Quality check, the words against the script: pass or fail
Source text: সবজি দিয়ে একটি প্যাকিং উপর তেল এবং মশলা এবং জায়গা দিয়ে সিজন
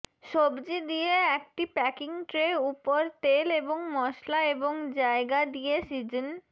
fail